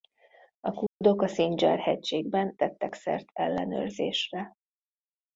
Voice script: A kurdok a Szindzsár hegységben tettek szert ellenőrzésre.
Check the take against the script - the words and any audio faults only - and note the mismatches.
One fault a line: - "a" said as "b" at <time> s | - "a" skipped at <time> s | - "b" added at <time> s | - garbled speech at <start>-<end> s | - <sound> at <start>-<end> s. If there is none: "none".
- dropout at 0.9-1.0 s